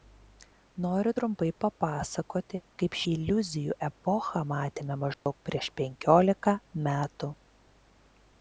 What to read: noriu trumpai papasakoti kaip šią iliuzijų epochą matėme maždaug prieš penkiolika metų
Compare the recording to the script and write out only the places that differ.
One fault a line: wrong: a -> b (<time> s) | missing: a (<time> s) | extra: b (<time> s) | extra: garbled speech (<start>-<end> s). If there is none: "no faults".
missing: šią (3.0 s)